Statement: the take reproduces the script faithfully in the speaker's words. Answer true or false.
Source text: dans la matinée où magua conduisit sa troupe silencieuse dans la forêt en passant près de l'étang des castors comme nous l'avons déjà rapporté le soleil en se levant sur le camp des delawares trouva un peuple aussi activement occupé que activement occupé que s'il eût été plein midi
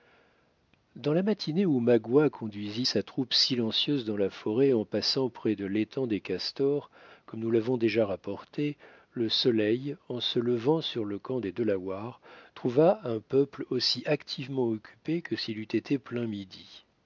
false